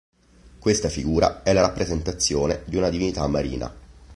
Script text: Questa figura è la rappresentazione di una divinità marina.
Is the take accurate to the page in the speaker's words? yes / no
yes